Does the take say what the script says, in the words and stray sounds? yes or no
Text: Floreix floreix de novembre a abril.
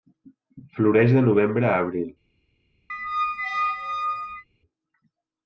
no